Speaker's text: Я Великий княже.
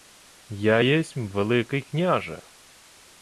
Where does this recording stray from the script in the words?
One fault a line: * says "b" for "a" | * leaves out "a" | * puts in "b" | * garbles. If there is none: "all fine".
* puts in "єсмь"